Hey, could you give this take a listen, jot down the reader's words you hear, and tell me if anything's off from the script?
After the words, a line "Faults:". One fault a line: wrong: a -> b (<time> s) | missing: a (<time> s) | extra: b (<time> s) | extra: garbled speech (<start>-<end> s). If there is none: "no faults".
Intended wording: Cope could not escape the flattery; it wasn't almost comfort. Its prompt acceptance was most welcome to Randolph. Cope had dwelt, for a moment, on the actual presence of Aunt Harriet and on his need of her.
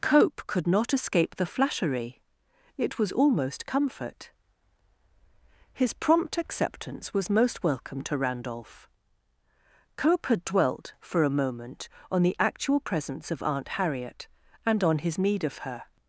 Cope could not escape the flattery; it was almost comfort. His prompt acceptance was most welcome to Randolph. Cope had dwelt, for a moment, on the actual presence of Aunt Harriet and on his need of her.
Faults:
wrong: wasn't -> was (3.0 s)
wrong: Its -> His (5.7 s)